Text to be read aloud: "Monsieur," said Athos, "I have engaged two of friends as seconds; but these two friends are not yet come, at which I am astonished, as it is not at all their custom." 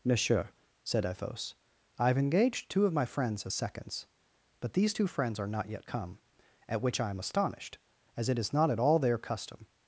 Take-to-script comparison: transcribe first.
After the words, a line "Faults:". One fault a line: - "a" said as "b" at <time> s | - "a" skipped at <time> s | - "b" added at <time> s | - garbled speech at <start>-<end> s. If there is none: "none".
"Monsieur," said Athos, "I have engaged two of my friends as seconds; but these two friends are not yet come, at which I am astonished, as it is not at all their custom."
Faults:
- "my" added at 2.9 s